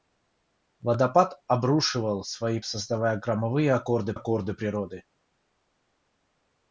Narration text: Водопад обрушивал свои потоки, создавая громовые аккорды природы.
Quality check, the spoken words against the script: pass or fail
fail